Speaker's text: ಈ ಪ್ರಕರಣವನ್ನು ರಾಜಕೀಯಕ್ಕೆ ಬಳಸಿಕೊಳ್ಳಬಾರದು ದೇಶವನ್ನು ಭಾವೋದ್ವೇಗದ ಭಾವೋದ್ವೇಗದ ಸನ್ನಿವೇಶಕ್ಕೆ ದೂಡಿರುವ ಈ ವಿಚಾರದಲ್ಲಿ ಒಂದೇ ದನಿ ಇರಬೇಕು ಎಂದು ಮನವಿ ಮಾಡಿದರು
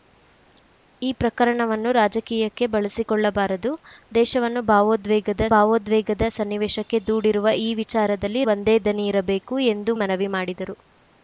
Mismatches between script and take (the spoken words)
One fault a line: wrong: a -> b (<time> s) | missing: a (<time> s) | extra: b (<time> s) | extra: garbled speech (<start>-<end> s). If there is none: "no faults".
no faults